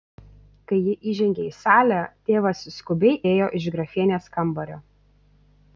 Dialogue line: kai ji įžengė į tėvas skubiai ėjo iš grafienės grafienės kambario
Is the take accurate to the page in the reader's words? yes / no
no